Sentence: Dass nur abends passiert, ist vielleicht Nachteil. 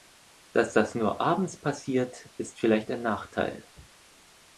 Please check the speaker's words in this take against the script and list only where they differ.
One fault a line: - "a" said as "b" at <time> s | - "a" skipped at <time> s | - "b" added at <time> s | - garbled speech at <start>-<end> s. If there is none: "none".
- "das" added at 0.7 s
- "ein" added at 2.9 s